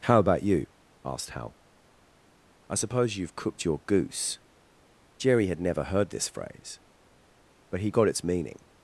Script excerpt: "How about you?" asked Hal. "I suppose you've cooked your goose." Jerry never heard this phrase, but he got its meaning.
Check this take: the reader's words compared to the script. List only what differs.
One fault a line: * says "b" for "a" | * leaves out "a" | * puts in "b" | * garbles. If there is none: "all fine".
* puts in "had"